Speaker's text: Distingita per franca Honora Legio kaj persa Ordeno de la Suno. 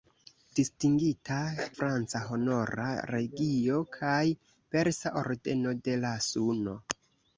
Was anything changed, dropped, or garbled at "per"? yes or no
yes